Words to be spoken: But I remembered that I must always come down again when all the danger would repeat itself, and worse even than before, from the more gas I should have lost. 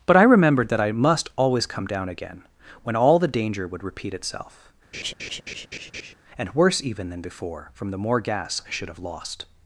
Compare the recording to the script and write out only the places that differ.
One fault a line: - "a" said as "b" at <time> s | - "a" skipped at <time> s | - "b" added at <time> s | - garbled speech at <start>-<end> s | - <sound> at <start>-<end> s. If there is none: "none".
- laugh at 4.9-6.1 s